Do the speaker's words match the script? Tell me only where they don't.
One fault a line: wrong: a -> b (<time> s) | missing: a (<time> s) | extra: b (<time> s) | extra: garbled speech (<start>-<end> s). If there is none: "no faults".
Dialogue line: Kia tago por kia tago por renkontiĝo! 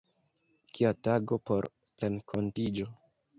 missing: kia tago por (1.7 s)